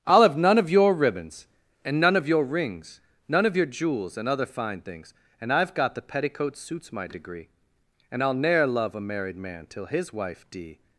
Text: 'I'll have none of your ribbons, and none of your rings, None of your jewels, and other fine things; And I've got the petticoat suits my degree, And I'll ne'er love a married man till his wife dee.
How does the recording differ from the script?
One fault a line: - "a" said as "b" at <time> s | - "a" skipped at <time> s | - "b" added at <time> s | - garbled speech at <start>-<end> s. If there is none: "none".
none